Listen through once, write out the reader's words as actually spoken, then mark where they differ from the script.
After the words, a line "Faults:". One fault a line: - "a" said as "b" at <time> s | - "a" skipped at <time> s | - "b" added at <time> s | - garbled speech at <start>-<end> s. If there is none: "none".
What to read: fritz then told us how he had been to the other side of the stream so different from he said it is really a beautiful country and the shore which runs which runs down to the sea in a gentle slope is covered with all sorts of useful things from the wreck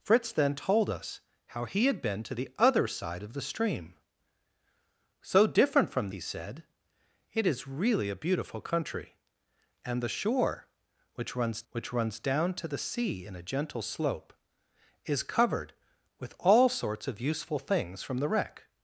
fritz then told us how he had been to the other side of the stream so different from he said it is really a beautiful country and the shore which runs which runs down to the sea in a gentle slope is covered with all sorts of useful things from the wreck
Faults:
none